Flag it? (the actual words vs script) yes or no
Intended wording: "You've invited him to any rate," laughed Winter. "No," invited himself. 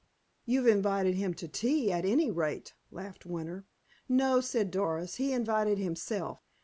yes